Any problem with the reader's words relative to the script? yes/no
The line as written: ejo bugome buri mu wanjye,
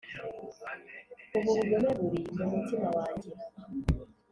yes